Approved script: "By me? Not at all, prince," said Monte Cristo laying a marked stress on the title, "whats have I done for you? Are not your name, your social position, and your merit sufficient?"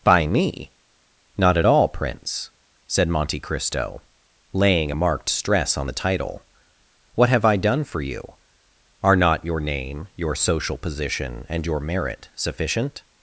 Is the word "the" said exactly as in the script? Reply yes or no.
yes